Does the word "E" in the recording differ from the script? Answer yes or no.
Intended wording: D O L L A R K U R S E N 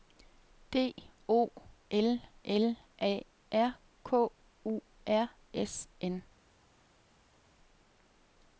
yes